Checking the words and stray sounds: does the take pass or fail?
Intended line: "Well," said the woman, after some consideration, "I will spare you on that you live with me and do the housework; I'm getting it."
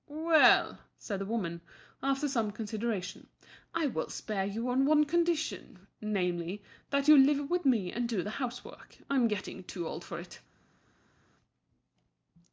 fail